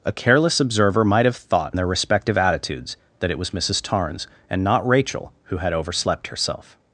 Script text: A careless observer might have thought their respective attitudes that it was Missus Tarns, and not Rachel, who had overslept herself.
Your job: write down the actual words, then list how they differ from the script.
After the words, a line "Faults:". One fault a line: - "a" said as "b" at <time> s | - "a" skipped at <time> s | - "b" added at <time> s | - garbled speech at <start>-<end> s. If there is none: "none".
A careless observer might have thought their respective attitudes that it was Missus Tarns, and not Rachel, who had overslept herself.
Faults:
none